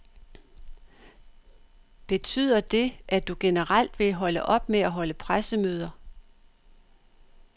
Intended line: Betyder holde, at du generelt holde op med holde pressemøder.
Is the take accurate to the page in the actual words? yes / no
no